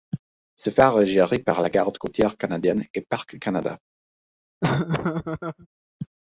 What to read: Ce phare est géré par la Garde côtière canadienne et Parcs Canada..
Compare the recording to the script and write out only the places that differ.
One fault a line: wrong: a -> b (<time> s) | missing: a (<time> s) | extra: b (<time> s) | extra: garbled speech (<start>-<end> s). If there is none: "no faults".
no faults